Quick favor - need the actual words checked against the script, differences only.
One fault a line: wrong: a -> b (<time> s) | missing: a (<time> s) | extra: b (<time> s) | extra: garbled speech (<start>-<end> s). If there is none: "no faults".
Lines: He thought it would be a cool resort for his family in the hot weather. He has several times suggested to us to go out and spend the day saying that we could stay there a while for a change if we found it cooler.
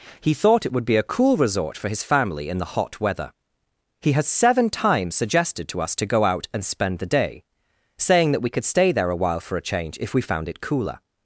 wrong: several -> seven (4.3 s)